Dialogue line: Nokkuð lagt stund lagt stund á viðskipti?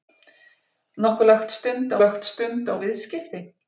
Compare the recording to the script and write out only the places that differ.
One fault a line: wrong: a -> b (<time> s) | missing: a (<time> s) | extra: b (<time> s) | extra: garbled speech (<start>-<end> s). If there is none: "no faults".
no faults